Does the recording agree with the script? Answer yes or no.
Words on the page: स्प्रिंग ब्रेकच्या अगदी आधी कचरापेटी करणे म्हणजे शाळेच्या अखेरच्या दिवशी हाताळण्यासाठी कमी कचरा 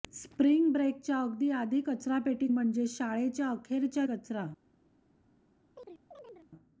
no